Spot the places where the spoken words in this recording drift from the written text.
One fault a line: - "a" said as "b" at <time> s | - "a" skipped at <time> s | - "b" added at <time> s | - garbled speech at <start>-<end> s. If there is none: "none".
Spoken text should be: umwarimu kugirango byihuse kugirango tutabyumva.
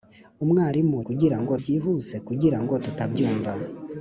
none